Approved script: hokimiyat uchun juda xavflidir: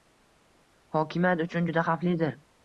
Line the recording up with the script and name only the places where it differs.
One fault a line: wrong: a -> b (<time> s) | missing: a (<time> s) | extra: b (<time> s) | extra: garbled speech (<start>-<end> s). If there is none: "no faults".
no faults